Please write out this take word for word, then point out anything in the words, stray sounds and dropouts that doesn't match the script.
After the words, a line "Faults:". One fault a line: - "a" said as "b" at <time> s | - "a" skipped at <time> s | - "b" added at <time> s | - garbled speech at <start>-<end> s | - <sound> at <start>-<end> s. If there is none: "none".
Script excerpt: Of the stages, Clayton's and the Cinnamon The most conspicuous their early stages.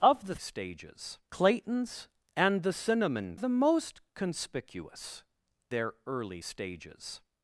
Of the stages, Clayton's and the Cinnamon The most conspicuous their early stages.
Faults:
none